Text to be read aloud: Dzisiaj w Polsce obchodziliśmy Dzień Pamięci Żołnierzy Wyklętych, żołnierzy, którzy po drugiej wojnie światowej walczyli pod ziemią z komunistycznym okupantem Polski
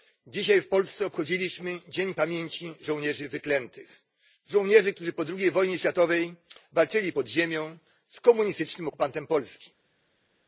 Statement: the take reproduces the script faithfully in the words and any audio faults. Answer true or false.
true